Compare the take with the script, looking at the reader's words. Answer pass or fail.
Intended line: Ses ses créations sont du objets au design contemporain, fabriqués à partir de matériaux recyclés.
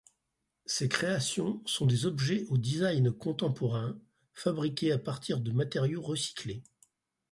fail